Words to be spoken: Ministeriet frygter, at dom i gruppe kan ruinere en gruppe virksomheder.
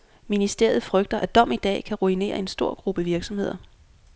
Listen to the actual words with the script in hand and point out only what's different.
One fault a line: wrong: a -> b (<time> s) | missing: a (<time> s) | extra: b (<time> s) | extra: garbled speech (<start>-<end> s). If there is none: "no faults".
wrong: gruppe -> dag (1.6 s)
extra: stor (2.5 s)